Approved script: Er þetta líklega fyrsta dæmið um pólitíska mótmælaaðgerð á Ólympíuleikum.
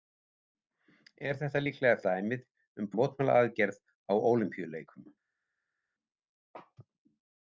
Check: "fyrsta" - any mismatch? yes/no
yes